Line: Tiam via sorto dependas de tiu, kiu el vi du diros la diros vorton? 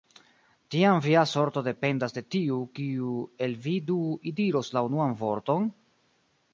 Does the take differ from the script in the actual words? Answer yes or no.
yes